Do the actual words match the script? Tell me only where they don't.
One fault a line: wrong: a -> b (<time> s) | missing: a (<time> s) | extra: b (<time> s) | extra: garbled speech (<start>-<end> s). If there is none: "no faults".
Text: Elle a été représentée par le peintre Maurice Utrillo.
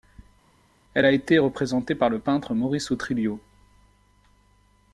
no faults